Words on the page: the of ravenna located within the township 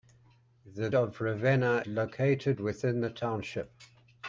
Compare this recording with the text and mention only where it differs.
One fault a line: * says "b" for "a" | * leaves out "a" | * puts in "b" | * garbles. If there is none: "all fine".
all fine